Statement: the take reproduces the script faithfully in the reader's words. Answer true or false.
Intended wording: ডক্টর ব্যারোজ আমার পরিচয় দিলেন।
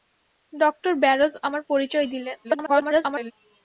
false